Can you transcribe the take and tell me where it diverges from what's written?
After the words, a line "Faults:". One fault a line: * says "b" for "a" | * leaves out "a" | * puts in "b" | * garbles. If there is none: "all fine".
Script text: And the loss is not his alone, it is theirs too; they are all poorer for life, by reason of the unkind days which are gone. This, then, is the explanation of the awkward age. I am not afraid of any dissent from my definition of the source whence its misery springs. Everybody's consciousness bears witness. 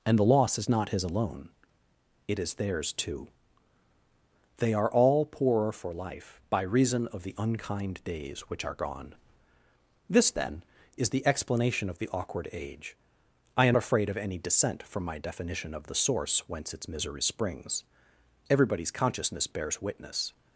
And the loss is not his alone, it is theirs too; they are all poorer for life, by reason of the unkind days which are gone. This, then, is the explanation of the awkward age. I am afraid of any dissent from my definition of the source whence its misery springs. Everybody's consciousness bears witness.
Faults:
* leaves out "not"